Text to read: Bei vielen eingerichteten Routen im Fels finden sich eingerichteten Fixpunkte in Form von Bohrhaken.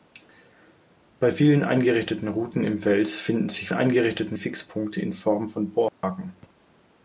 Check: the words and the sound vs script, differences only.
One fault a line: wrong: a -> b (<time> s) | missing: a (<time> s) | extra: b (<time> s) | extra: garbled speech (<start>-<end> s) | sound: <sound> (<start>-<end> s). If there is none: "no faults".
sound: dropout (5.9-6.0 s)